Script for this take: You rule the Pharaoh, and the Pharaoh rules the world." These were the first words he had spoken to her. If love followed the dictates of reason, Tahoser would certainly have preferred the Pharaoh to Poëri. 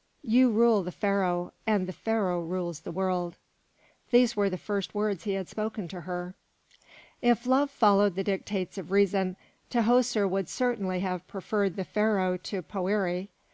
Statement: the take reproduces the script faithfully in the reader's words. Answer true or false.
true